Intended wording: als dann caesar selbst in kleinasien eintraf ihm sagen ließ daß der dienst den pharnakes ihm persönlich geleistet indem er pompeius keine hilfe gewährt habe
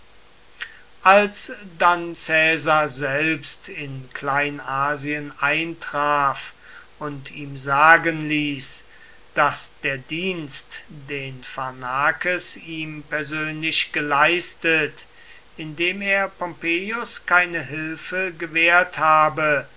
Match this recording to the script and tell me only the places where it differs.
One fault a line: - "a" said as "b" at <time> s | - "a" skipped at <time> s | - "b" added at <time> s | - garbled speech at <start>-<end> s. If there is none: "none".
- "und" added at 7.0 s